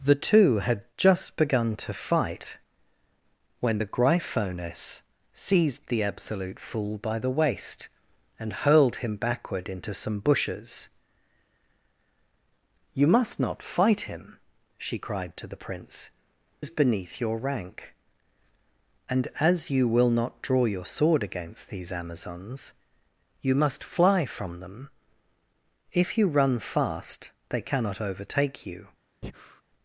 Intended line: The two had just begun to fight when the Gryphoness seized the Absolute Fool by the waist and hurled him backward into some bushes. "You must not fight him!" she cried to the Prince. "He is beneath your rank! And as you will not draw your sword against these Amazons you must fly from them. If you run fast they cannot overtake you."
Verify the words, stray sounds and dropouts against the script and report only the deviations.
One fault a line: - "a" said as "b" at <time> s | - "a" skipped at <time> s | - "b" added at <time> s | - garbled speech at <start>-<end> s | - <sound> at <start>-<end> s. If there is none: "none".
- "He" skipped at 16.1 s
- breath at 29.2-29.6 s